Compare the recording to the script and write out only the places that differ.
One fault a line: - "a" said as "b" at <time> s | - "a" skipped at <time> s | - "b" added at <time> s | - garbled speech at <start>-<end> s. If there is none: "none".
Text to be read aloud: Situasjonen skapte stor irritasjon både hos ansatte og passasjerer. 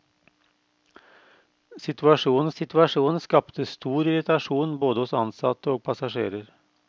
- "situasjonen" added at 2.5 s